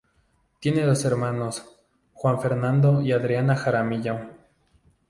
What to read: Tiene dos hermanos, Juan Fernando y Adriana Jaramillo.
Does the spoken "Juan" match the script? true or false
true